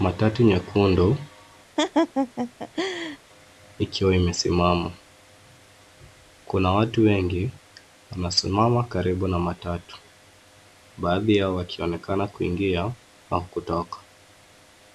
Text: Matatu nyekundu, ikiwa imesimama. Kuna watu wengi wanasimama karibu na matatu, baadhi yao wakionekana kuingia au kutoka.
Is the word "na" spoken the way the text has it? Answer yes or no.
yes